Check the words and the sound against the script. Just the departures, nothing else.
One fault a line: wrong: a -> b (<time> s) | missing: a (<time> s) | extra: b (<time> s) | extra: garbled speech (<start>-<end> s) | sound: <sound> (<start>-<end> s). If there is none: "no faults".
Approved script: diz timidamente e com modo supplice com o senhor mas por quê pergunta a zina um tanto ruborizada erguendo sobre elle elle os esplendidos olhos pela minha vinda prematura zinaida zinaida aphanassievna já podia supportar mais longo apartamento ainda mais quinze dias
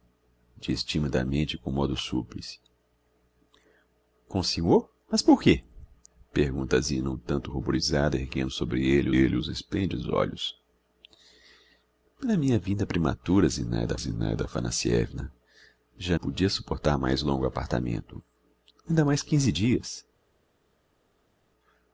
no faults